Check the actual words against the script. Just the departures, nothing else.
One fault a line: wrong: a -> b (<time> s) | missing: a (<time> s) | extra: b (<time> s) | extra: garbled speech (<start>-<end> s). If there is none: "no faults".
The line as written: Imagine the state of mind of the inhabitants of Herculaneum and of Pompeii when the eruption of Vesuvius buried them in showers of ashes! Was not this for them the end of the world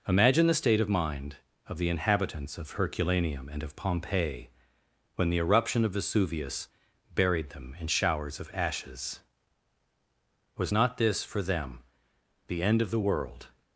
no faults